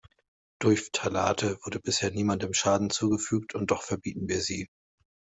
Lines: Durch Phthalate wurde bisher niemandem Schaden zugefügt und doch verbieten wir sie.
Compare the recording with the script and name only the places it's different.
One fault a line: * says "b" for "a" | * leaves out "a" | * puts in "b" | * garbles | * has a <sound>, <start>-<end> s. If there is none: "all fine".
all fine